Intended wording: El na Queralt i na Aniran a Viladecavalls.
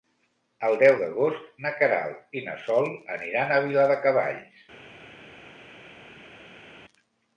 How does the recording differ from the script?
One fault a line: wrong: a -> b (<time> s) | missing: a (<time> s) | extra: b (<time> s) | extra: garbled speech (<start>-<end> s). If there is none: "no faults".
extra: deu d'agost (0.8 s)
extra: Sol (2.7 s)